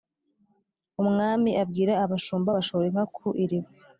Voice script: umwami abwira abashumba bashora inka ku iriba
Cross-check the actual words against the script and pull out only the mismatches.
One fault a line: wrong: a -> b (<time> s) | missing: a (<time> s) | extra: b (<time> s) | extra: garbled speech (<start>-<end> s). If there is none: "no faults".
no faults